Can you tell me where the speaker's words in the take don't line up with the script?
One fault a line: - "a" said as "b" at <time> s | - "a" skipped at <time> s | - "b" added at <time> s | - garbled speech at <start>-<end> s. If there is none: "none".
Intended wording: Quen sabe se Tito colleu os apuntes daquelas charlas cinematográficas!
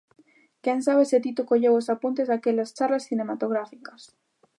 none